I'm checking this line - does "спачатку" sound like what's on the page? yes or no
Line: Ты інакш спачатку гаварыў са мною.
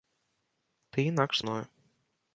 no